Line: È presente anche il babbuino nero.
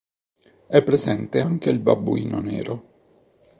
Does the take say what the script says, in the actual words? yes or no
yes